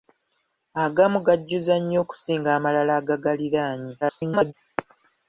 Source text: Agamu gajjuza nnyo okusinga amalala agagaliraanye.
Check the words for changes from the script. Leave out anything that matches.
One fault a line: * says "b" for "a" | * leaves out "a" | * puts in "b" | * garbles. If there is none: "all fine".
* garbles